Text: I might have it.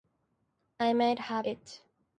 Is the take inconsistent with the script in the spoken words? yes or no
no